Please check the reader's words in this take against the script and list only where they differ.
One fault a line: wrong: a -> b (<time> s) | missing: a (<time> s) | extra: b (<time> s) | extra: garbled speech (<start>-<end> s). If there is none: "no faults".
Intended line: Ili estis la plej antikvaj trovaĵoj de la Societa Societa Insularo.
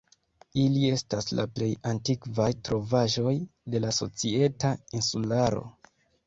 wrong: estis -> estas (0.9 s)
missing: Societa (4.8 s)